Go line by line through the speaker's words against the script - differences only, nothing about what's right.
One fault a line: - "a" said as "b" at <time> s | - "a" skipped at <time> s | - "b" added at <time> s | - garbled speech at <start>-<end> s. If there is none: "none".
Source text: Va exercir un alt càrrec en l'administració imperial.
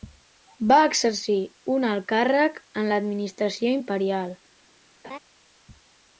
none